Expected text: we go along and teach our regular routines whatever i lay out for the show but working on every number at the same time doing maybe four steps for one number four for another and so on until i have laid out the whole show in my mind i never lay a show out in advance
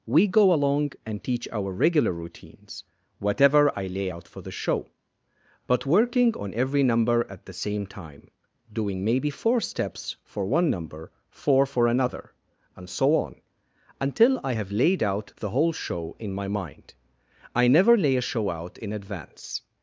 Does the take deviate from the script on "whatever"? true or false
false